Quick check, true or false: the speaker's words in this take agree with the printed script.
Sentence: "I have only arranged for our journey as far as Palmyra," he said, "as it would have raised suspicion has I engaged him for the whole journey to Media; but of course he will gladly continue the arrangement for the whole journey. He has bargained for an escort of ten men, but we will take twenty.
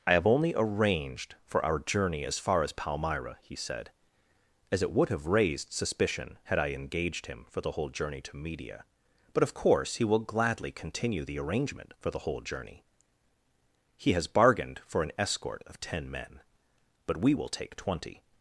false